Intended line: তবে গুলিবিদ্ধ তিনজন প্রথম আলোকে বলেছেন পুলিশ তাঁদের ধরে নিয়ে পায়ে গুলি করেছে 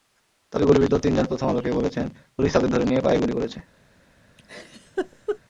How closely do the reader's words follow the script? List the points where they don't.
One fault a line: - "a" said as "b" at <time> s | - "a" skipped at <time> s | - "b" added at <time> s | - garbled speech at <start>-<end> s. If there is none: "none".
none